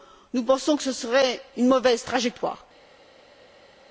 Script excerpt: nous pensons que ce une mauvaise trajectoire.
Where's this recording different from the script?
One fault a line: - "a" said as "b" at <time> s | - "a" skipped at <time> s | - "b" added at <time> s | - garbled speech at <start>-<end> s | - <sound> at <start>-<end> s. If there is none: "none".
- "serait" added at 0.9 s